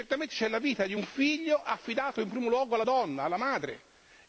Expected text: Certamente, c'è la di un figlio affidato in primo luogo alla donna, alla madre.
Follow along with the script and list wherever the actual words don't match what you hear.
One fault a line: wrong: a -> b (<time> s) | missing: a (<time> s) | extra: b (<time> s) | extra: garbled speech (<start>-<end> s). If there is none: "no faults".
extra: vita (0.6 s)